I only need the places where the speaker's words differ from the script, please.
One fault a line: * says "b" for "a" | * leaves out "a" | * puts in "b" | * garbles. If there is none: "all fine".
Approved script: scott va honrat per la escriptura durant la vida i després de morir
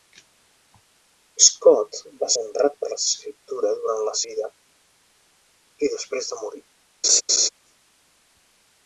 all fine